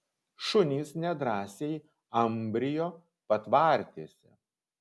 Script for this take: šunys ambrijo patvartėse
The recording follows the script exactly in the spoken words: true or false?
false